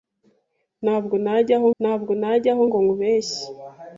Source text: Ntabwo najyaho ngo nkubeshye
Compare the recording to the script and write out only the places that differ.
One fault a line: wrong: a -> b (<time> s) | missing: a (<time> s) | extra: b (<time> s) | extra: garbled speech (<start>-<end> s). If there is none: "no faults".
extra: ntabwo najyaho (1.8 s)